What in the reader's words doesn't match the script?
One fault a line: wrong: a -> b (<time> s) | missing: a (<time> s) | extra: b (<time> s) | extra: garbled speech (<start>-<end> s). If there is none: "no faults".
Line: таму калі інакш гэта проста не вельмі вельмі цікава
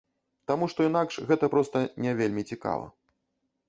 wrong: калі -> што (0.7 s)
missing: вельмі (2.5 s)